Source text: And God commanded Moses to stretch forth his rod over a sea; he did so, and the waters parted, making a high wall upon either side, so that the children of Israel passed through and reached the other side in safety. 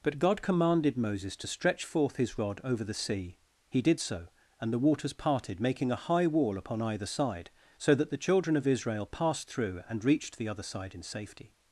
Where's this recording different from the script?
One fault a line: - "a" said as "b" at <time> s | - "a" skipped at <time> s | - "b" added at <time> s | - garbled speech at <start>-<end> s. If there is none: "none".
- "And" said as "But" at 0.0 s
- "a" said as "the" at 2.8 s